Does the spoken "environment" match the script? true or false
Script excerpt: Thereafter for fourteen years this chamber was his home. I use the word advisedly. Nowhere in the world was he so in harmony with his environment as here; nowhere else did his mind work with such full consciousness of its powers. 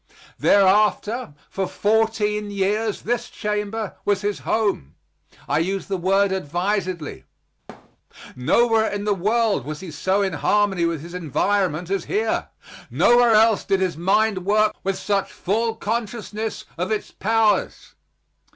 true